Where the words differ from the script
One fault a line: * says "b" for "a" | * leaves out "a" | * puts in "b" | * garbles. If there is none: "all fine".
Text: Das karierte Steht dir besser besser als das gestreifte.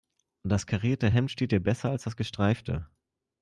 * puts in "Hemd"
* leaves out "besser"